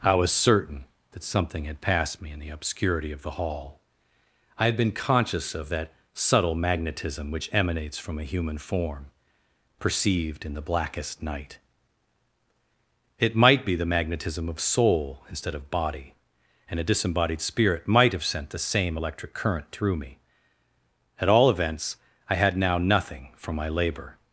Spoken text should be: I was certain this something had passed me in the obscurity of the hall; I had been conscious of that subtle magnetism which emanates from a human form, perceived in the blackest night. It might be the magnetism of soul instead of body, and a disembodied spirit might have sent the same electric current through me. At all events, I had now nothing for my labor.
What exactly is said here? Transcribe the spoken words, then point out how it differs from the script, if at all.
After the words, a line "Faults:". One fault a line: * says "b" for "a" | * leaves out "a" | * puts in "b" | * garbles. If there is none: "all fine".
I was certain that something had passed me in the obscurity of the hall; I had been conscious of that subtle magnetism which emanates from a human form, perceived in the blackest night. It might be the magnetism of soul instead of body, and a disembodied spirit might have sent the same electric current through me. At all events, I had now nothing for my labor.
Faults:
* says "that" for "this"